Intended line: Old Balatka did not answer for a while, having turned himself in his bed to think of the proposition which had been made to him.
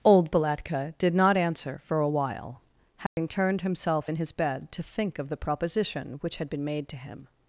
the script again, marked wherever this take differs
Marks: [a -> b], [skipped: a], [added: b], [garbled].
Old Balatka did not answer for a while, having turned himself in his bed to think of the proposition which had been made to him.